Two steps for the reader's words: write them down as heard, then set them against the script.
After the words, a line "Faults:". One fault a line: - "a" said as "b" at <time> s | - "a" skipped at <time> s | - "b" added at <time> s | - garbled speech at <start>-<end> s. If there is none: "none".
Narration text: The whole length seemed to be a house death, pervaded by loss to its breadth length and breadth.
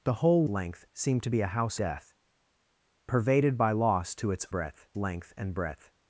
The whole length seemed to be a house death, pervaded by loss to its breadth length and breadth.
Faults:
none